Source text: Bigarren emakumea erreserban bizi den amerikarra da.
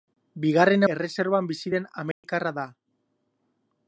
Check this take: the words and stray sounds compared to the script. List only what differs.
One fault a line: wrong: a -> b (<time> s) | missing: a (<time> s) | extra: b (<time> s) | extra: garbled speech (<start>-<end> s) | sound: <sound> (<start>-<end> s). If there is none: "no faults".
missing: emakumea (0.8 s)
sound: dropout (2.1-2.2 s)